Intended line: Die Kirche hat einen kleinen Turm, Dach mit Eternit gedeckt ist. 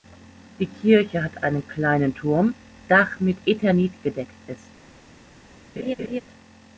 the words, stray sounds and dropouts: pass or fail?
fail